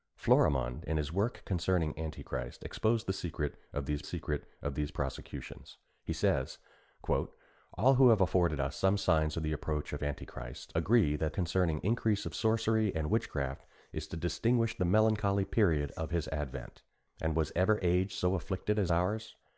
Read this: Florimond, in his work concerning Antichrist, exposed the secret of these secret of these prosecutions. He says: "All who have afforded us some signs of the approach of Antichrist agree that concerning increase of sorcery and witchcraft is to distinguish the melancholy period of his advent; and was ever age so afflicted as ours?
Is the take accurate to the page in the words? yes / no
yes